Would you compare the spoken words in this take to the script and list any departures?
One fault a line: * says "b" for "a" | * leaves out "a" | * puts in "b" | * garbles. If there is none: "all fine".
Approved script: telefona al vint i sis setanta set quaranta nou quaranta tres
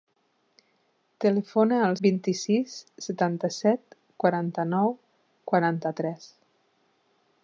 all fine